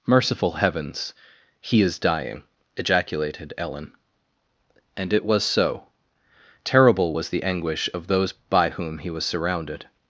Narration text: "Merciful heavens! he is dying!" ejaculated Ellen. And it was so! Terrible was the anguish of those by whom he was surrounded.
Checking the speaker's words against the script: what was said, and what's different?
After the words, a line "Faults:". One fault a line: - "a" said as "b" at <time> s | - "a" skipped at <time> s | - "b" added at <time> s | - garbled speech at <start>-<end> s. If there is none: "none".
"Merciful heavens! he is dying!" ejaculated Ellen. And it was so! Terrible was the anguish of those by whom he was surrounded.
Faults:
none